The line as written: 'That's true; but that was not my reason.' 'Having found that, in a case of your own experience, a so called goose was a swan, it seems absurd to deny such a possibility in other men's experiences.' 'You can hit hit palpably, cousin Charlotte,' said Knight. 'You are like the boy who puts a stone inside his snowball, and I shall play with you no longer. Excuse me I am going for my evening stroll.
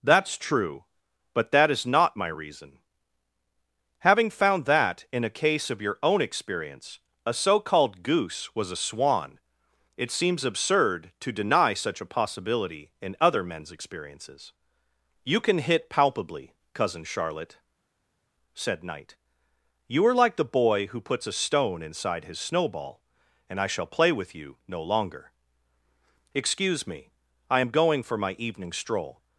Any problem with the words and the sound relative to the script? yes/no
yes